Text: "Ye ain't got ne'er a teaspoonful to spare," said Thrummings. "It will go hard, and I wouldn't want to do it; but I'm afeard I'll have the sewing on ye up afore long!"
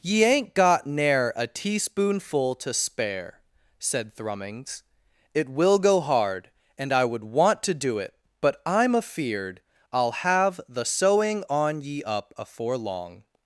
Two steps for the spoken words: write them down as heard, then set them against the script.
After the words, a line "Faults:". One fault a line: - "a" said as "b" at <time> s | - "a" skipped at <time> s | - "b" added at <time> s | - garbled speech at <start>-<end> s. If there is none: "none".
"Ye ain't got ne'er a teaspoonful to spare," said Thrummings. "It will go hard, and I would want to do it; but I'm afeard I'll have the sewing on ye up afore long!"
Faults:
- "wouldn't" said as "would" at 7.0 s